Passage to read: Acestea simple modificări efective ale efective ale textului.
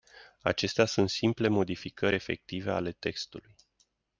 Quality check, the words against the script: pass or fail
fail